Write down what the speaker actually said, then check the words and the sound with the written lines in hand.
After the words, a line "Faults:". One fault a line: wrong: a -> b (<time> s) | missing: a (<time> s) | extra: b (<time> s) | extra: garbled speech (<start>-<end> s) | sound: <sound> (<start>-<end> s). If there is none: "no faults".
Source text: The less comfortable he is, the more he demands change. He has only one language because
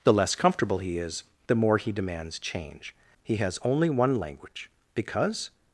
The less comfortable he is, the more he demands change. He has only one language because
Faults:
no faults